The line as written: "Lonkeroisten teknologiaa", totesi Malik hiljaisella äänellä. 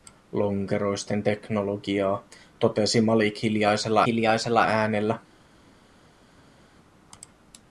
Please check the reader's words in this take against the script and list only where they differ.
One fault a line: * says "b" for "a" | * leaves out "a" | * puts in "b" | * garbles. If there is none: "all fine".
* puts in "hiljaisella"